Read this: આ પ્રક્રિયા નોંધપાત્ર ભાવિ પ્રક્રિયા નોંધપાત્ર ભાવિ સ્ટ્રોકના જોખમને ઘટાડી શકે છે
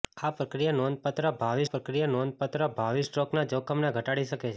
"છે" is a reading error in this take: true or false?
false